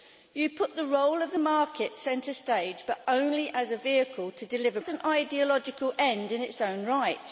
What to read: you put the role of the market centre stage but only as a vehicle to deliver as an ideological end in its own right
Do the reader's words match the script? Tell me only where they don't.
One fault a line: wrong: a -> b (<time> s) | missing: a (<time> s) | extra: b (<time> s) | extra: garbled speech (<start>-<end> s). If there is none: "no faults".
no faults